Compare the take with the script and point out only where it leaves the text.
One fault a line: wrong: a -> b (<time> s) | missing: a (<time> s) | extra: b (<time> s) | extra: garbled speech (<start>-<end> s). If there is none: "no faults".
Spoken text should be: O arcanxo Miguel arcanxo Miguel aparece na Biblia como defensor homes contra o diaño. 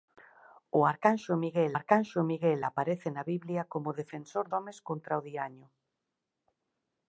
no faults